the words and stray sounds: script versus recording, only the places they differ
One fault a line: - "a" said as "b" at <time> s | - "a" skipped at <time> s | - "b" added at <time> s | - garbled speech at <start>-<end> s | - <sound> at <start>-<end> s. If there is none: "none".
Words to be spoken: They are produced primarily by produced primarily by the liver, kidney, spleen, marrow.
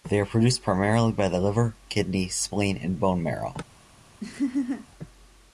- "produced primarily by" skipped at 1.3 s
- "and bone" added at 2.8 s
- laugh at 4.2-4.9 s